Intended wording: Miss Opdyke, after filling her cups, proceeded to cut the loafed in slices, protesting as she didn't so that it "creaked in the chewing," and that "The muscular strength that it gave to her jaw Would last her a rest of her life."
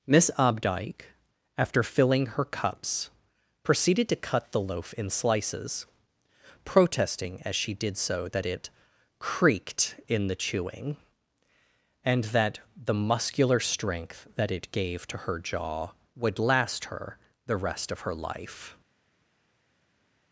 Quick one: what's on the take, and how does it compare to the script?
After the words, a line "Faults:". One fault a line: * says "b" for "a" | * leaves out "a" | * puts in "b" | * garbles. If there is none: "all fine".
Miss Opdyke, after filling her cups, proceeded to cut the loaf in slices, protesting as she did so that it "creaked in the chewing," and that "The muscular strength that it gave to her jaw Would last her the rest of her life."
Faults:
* says "loaf" for "loafed"
* says "did" for "didn't"
* says "the" for "a"